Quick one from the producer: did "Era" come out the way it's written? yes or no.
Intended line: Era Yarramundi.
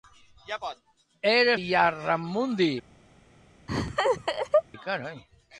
yes